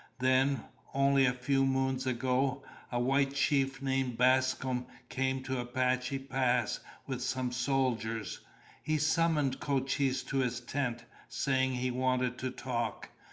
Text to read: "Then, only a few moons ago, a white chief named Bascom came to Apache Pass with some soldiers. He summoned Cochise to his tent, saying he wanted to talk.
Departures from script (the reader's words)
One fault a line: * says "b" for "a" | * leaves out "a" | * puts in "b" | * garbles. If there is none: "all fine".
all fine